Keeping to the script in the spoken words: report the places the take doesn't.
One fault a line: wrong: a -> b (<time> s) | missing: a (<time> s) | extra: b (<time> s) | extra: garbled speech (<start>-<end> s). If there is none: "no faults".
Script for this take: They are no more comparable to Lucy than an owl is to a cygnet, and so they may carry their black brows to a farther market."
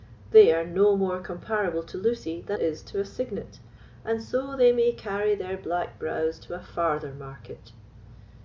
missing: an owl (2.6 s)